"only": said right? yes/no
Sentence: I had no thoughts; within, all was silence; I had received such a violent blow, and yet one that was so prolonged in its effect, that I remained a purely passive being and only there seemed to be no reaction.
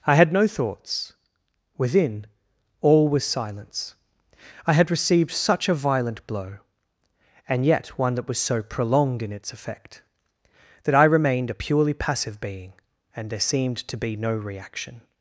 no